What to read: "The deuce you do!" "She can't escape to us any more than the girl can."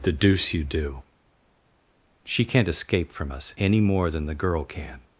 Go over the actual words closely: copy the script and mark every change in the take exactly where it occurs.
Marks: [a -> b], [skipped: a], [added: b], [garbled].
"The deuce you do!" "She can't escape [to -> from] us any more than the girl can."